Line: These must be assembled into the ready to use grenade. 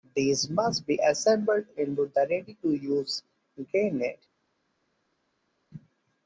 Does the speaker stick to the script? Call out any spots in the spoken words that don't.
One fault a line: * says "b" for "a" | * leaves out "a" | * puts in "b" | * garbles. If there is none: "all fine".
all fine